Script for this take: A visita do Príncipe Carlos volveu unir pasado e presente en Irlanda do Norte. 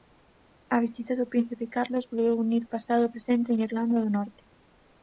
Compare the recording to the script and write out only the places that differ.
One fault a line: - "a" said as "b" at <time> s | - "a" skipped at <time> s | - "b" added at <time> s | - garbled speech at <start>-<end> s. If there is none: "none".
none